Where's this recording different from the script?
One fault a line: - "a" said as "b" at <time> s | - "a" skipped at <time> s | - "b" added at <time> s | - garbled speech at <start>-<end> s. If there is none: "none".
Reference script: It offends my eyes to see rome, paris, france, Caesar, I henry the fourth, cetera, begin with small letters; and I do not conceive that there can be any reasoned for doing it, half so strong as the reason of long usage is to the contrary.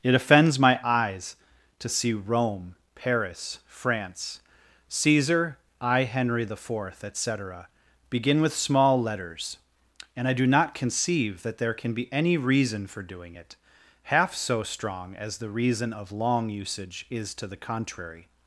- "et" added at 7.0 s
- "reasoned" said as "reason" at 12.3 s